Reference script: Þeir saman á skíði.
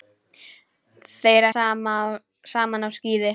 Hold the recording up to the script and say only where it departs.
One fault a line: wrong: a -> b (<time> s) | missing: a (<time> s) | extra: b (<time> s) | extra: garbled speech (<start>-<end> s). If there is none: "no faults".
no faults